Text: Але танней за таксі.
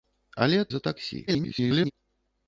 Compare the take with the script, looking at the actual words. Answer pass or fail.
fail